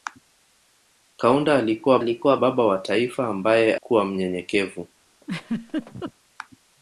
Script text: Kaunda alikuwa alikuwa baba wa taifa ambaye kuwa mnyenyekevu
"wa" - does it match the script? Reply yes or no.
yes